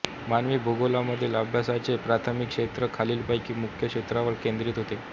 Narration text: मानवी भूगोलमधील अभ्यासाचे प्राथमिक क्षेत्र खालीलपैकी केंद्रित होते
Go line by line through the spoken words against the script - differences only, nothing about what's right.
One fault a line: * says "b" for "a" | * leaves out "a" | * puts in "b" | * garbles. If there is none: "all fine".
* puts in "मुख्य क्षेत्रांवर"